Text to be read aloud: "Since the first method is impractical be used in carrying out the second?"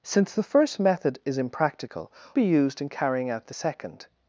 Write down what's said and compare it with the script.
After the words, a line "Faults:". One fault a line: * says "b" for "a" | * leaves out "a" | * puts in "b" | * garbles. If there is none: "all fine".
"Since the first method is impractical be used in carrying out the second?"
Faults:
all fine